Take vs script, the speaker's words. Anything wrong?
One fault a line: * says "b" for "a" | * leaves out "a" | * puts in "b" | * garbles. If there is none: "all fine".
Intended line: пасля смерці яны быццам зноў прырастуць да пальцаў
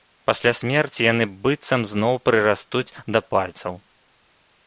all fine